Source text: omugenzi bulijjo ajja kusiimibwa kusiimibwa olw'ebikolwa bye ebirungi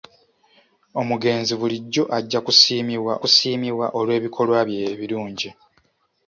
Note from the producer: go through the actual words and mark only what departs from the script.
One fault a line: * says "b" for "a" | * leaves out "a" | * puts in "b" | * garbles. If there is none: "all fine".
all fine